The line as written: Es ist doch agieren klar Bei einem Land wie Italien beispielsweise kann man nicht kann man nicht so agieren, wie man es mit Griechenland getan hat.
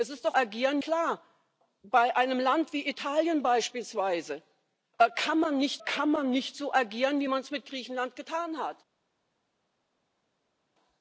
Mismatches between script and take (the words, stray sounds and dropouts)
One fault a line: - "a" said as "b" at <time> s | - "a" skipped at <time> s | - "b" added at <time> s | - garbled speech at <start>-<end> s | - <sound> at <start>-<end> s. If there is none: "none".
none